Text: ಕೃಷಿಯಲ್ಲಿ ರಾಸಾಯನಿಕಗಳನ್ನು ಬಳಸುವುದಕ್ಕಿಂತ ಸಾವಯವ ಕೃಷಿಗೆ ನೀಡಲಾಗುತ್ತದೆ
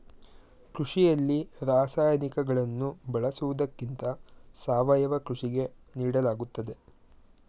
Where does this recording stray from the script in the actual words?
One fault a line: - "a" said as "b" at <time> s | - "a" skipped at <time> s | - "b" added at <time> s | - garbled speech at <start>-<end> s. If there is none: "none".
none